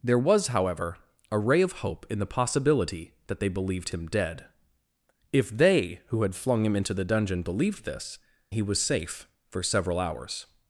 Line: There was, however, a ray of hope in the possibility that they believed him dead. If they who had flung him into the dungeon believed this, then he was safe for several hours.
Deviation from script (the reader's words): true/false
true